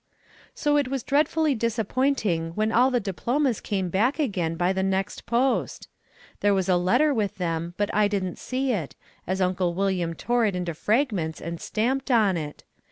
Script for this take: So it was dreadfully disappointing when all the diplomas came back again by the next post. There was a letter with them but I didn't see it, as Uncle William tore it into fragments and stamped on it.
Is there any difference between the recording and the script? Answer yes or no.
no